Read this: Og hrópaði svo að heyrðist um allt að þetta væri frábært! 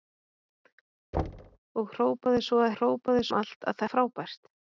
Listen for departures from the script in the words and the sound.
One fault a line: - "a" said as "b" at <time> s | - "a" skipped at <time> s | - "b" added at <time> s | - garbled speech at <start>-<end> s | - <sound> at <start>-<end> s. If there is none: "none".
- thud at 1.1-1.6 s
- "heyrðist" said as "hrópaði" at 2.8 s
- "þetta væri" skipped at 3.8 s